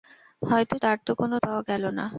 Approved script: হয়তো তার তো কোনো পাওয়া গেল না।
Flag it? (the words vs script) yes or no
no